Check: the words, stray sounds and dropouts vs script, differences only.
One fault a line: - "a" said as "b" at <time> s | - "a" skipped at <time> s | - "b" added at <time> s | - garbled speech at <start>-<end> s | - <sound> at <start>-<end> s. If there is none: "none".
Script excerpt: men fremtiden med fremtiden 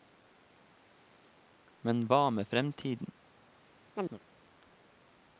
- "fremtiden" said as "hva" at 2.0 s
- chirp at 3.9-4.2 s